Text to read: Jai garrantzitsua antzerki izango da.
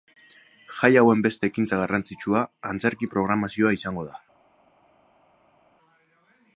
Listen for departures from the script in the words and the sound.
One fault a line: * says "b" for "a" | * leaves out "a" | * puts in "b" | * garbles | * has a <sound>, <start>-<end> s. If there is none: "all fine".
* puts in "hauen beste ekintza"
* puts in "programazioa"